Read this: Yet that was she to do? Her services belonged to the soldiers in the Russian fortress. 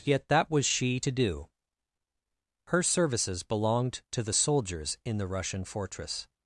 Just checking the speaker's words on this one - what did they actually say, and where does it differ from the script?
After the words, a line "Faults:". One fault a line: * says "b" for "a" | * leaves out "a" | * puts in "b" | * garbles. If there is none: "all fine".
Yet that was she to do? Her services belonged to the soldiers in the Russian fortress.
Faults:
all fine